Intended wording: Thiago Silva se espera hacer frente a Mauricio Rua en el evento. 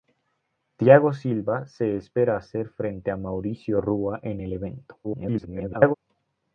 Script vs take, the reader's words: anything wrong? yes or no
yes